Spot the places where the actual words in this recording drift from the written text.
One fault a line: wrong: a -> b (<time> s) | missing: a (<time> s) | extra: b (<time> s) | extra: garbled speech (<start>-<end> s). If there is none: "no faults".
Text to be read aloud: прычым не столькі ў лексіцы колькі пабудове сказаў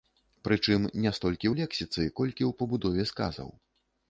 extra: ў (2.5 s)